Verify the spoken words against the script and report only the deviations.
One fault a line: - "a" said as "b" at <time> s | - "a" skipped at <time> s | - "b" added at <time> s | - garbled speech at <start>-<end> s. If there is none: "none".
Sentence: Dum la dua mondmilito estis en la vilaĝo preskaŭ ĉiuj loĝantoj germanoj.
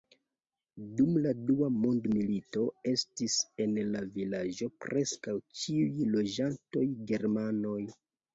none